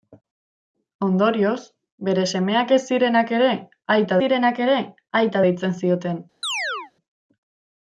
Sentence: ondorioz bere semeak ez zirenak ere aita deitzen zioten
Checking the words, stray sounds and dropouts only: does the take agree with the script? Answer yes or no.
no